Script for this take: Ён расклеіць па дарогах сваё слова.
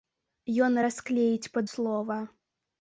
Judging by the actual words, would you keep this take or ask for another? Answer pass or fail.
fail